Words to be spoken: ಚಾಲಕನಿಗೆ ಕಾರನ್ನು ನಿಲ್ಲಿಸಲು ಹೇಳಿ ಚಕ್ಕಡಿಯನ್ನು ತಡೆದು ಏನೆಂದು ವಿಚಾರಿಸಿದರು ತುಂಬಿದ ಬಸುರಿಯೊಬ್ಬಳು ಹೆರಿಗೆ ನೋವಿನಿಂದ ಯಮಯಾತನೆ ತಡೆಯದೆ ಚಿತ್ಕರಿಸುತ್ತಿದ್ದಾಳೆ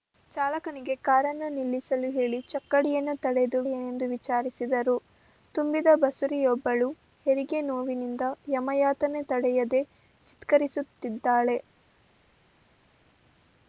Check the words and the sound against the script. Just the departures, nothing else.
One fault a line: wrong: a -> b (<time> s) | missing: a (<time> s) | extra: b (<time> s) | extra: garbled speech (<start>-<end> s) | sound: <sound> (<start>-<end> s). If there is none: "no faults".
no faults